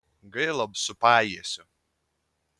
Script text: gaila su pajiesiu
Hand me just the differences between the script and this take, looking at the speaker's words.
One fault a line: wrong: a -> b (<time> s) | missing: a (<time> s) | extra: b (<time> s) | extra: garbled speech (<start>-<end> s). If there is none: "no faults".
no faults